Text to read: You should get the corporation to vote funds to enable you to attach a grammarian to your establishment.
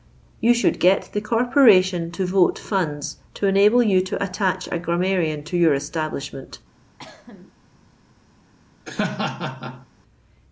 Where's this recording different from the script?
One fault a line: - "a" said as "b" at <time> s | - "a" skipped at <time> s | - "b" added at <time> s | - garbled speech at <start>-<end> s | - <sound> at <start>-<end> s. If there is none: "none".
- cough at 7.0-7.5 s
- laugh at 8.9-9.9 s